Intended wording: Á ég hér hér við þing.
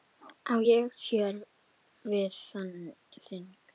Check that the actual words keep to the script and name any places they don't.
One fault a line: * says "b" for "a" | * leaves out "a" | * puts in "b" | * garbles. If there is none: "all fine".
* leaves out "hér"